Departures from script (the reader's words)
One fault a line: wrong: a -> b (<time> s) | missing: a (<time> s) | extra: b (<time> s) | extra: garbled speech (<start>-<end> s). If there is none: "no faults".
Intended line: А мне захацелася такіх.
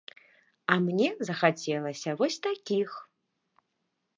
extra: вось (2.2 s)